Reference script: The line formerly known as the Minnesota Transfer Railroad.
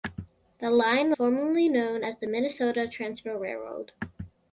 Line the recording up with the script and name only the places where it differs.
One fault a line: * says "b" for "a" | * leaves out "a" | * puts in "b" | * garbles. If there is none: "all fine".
all fine